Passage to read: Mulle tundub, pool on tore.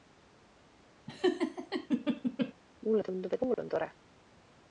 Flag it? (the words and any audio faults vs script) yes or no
yes